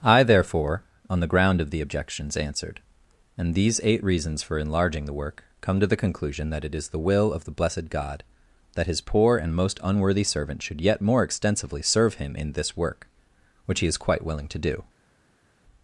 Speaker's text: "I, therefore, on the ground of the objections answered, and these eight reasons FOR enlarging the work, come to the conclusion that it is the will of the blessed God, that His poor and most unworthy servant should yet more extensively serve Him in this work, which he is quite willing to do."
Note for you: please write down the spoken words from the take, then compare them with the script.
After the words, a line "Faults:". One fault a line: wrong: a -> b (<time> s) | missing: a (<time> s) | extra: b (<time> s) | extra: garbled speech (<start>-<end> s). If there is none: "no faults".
"I, therefore, on the ground of the objections answered, and these eight reasons FOR enlarging the work, come to the conclusion that it is the will of the blessed God, that His poor and most unworthy servant should yet more extensively serve Him in this work, which he is quite willing to do."
Faults:
no faults